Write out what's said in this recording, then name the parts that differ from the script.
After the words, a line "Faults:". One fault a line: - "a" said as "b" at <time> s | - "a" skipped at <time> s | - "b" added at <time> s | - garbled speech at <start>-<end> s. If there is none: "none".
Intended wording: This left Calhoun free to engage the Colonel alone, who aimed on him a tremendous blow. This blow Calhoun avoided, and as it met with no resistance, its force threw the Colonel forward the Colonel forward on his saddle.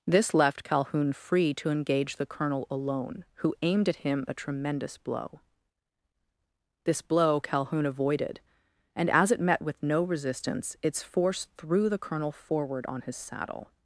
This left Calhoun free to engage the Colonel alone, who aimed at him a tremendous blow. This blow Calhoun avoided, and as it met with no resistance, its force threw the Colonel forward on his saddle.
Faults:
- "on" said as "at" at 3.9 s
- "the Colonel forward" skipped at 12.8 s